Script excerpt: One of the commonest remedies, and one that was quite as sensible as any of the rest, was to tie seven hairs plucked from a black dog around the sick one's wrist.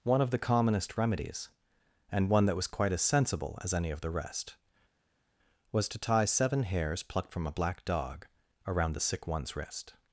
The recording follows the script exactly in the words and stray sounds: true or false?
true